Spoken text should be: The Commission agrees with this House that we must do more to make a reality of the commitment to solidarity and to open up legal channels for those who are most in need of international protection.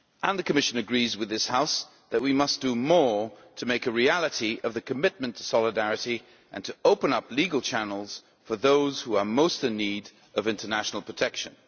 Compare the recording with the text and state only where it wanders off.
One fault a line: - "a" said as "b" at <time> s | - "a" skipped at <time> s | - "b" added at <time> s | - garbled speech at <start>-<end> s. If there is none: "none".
none